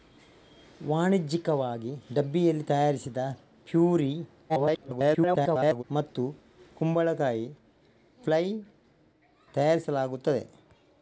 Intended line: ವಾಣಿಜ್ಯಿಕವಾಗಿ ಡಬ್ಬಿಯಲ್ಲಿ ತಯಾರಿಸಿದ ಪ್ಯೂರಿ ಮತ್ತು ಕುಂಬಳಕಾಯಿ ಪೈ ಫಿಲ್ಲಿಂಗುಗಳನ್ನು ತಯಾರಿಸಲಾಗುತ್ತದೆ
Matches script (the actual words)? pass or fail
fail